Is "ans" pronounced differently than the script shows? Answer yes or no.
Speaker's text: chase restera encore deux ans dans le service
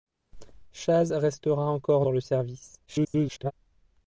yes